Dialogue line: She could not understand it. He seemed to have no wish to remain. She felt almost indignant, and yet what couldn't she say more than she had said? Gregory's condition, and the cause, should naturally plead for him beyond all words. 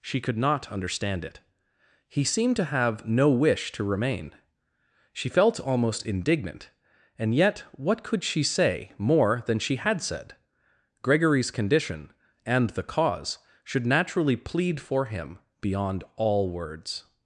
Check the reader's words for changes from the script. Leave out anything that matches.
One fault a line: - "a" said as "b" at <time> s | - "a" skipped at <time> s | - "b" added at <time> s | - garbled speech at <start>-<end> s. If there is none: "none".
- "couldn't" said as "could" at 8.0 s